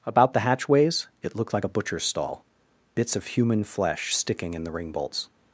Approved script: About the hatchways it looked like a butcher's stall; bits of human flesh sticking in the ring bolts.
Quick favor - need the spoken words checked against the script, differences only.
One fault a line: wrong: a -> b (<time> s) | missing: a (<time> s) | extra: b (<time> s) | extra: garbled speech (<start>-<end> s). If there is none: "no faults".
no faults